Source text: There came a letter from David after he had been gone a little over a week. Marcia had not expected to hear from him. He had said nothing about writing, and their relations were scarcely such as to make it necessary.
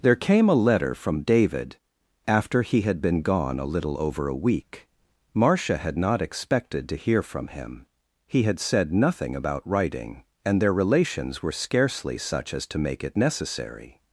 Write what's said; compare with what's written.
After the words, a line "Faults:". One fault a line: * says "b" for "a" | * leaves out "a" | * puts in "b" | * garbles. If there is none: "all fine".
There came a letter from David after he had been gone a little over a week. Marcia had not expected to hear from him. He had said nothing about writing, and their relations were scarcely such as to make it necessary.
Faults:
all fine